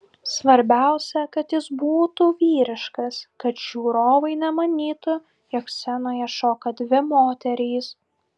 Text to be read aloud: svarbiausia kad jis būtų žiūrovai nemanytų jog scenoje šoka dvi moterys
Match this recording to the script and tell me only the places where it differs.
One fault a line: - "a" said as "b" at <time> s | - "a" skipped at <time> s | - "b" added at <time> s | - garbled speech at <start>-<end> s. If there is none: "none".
- "vyriškas kad" added at 2.4 s